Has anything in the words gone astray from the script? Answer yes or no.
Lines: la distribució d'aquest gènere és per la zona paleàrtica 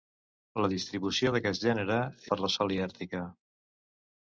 yes